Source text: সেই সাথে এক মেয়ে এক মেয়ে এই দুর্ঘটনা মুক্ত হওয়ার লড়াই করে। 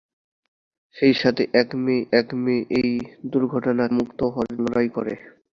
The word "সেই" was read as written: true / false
true